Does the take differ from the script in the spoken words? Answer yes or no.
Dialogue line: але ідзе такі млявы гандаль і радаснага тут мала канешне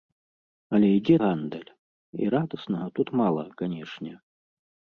yes